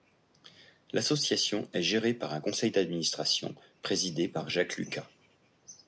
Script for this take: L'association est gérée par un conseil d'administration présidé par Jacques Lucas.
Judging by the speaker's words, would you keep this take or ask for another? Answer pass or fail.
pass